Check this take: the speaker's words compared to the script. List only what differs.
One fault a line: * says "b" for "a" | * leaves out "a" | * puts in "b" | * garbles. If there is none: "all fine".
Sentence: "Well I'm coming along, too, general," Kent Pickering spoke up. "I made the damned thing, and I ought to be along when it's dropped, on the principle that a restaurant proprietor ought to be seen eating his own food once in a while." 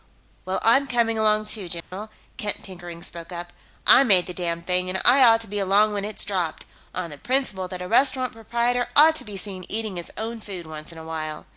all fine